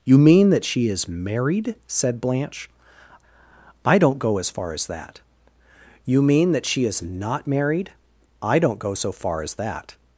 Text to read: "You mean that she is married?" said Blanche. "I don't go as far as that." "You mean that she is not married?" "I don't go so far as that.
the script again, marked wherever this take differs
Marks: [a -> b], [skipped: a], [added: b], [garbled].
"You mean that she is married?" said Blanche. "I don't go as far as that." "You mean that she is not married?" "I don't go so far as that.